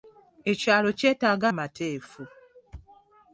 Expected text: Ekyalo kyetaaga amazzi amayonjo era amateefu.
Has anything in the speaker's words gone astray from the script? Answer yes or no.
yes